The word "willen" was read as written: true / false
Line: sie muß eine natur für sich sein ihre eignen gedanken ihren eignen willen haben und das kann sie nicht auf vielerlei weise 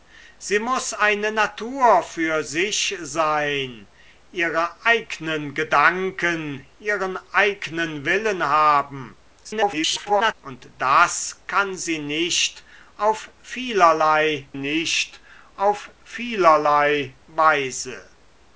true